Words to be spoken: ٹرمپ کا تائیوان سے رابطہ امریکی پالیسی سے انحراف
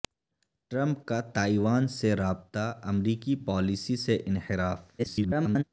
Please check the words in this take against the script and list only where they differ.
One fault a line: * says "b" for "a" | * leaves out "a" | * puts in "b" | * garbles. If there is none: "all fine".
* garbles